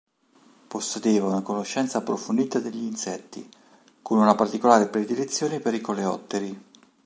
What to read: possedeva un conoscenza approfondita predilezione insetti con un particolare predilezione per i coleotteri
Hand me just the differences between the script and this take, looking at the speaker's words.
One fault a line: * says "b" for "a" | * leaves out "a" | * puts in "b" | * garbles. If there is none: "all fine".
* says "una" for "un"
* says "degli" for "predilezione"
* says "una" for "un"